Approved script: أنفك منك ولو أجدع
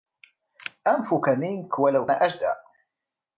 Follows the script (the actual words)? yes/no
yes